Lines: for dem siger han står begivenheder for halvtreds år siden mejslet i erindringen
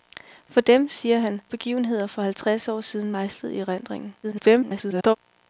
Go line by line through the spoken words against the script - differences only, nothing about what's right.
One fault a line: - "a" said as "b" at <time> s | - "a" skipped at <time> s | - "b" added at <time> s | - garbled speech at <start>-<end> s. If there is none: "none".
- "står" skipped at 1.4 s
- garbled speech at 4.2-5.2 s